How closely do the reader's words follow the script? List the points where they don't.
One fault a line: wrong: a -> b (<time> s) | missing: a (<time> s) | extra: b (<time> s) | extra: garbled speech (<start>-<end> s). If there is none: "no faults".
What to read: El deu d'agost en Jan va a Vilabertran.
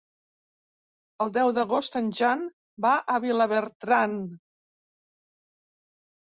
no faults